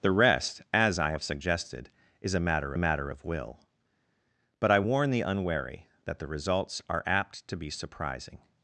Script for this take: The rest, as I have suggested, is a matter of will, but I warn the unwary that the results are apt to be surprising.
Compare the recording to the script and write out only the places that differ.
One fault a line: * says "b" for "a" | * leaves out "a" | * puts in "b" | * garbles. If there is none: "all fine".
* puts in "matter"